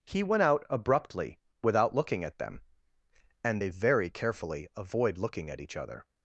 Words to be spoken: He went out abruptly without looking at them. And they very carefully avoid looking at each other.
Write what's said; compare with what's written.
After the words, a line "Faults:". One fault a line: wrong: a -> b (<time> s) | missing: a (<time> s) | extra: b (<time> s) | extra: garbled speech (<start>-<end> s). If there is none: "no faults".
He went out abruptly without looking at them. And they very carefully avoid looking at each other.
Faults:
no faults